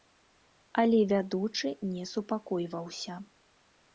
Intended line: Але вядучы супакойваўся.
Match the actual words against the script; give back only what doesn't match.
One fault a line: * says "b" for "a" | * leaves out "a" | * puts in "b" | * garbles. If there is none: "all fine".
* puts in "не"